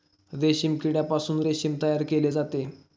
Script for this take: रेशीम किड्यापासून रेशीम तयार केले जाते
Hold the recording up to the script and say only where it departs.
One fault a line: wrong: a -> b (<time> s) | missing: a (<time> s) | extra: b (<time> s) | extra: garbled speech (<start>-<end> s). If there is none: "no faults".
no faults